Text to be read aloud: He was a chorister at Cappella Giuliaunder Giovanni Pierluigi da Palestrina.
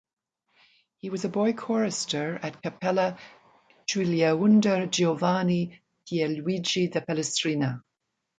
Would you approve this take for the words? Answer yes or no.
no